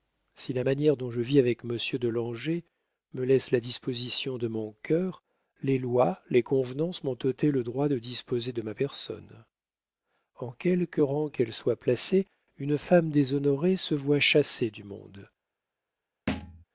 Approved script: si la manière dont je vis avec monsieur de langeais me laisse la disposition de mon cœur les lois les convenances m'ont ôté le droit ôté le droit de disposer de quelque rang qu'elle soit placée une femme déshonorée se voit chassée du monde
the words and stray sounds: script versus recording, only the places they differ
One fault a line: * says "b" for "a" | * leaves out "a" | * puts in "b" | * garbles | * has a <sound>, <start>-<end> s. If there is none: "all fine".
* says "de disposer de ma personne en" for "ôté le droit de disposer de"
* has a thud, 16.3-16.6 s